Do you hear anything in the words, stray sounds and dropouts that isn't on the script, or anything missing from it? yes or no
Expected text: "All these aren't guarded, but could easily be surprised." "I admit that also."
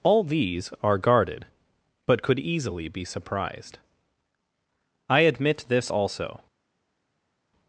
yes